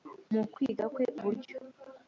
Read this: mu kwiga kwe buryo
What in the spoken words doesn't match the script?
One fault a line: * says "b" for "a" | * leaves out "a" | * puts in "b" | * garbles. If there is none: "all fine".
all fine